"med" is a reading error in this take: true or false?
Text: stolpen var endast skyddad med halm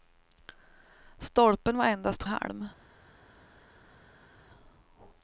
true